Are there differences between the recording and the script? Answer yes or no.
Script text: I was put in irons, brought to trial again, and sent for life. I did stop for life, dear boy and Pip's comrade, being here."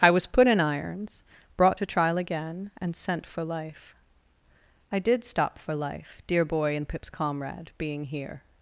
no